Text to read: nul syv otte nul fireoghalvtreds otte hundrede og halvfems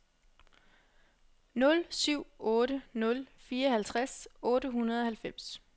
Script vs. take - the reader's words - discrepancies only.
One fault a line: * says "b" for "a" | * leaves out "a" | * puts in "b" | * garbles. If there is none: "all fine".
all fine